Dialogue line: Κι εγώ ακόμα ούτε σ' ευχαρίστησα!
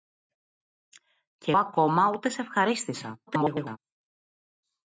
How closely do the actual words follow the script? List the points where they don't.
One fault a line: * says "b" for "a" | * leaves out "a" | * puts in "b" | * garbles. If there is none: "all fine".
* leaves out "εγώ"
* garbles